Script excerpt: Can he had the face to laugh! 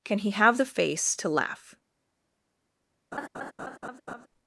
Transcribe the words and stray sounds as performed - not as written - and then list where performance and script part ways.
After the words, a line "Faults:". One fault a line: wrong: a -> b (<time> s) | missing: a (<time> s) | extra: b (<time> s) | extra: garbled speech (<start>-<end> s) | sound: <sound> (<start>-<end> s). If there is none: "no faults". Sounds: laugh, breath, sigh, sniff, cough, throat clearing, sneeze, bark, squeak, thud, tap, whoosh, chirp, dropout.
Can he have the face to laugh!
Faults:
wrong: had -> have (0.3 s)
sound: laugh (3.1-4.3 s)